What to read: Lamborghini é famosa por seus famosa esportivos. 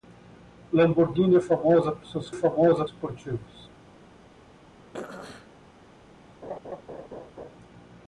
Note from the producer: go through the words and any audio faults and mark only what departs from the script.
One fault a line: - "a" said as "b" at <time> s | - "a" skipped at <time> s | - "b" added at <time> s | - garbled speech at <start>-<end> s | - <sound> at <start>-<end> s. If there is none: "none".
- throat clearing at 4.9-5.5 s
- laugh at 6.4-7.6 s